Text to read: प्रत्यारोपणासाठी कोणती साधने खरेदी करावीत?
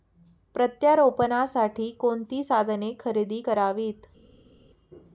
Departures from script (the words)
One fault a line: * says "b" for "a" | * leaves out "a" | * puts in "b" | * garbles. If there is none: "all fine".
all fine